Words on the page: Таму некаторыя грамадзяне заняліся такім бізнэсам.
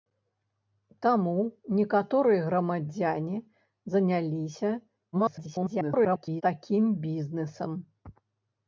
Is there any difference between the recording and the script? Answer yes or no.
yes